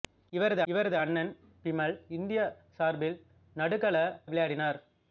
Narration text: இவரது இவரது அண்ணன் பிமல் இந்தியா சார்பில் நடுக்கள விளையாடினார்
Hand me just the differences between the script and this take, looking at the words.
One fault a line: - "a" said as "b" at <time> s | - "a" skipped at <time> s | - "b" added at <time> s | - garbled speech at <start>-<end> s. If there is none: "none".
none